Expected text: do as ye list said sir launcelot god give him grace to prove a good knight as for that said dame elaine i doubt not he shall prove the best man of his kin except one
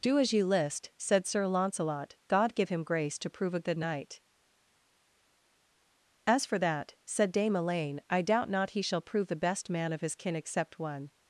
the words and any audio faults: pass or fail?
pass